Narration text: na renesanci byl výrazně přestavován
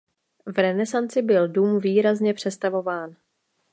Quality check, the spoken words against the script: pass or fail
fail